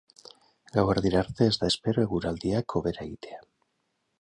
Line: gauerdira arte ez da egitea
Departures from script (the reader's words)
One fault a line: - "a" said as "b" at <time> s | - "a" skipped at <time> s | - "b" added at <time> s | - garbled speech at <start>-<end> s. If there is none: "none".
- "espero eguraldiak hobera" added at 1.7 s